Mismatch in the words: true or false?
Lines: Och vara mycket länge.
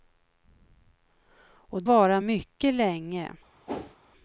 false